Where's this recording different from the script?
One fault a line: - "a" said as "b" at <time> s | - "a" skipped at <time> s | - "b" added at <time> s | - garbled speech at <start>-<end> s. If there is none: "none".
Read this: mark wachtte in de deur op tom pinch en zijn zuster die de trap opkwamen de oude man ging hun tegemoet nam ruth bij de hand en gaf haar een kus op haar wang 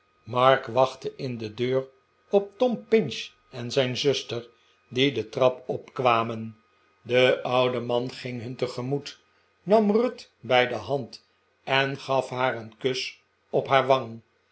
none